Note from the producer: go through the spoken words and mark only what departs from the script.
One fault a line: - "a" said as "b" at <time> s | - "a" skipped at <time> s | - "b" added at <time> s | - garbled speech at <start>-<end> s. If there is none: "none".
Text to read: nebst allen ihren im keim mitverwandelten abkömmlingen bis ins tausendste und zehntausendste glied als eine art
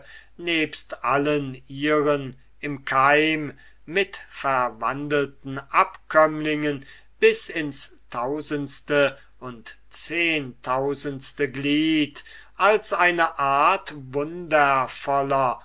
none